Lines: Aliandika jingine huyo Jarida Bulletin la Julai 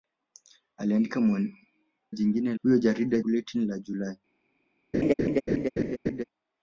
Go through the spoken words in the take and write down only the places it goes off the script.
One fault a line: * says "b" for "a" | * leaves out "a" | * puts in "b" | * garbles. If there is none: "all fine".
all fine